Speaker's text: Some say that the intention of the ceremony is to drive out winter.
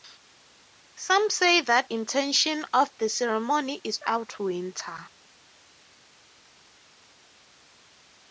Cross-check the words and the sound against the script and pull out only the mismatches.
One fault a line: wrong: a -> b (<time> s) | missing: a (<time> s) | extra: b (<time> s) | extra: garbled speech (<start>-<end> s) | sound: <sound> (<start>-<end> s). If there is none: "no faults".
missing: the (1.9 s)
missing: to drive (4.0 s)